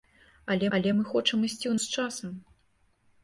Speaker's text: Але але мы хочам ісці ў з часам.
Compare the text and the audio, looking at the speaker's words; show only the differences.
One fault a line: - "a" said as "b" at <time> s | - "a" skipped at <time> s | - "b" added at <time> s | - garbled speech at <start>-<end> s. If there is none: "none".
none